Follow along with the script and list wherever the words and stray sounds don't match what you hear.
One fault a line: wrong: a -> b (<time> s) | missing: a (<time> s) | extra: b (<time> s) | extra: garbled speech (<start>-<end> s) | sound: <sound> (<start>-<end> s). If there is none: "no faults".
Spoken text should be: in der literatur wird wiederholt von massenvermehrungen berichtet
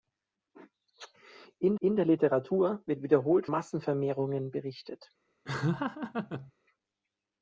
extra: in (1.8 s)
missing: von (3.5 s)
sound: laugh (5.4-6.5 s)